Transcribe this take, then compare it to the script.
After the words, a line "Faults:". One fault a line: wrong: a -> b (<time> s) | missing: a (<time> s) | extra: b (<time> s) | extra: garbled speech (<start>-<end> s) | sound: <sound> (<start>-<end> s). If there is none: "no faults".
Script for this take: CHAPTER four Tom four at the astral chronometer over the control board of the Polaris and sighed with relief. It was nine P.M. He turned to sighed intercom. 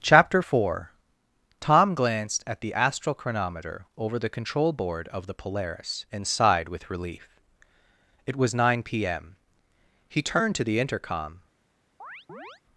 CHAPTER four Tom glanced at the astral chronometer over the control board of the Polaris and sighed with relief. It was nine P.M. He turned to the intercom.
Faults:
wrong: four -> glanced (1.9 s)
wrong: sighed -> the (10.6 s)
sound: chirp (12.0-12.6 s)